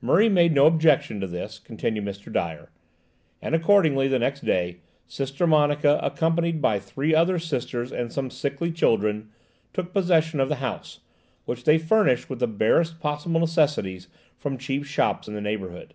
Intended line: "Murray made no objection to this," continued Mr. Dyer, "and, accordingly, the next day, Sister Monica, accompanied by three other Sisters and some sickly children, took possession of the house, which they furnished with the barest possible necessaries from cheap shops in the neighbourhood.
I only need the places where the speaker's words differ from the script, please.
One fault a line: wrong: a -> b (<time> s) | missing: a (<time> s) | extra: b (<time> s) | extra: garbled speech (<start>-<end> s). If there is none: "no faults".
no faults